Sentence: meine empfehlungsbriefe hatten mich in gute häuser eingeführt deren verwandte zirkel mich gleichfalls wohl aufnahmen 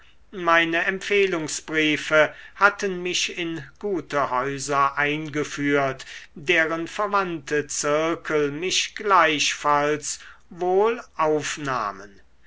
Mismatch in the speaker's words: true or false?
false